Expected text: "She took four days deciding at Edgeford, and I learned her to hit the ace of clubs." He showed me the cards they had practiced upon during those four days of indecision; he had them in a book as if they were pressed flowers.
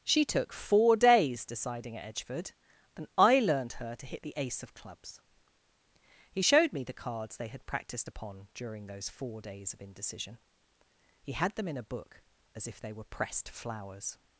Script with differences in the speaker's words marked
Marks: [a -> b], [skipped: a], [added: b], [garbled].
"She took four days deciding at Edgeford, and I learned her to hit the ace of clubs." He showed me the cards they had practiced upon during those four days of indecision; he had them in a book as if they were pressed flowers.